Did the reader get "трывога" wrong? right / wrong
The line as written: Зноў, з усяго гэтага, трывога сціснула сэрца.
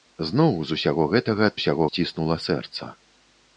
wrong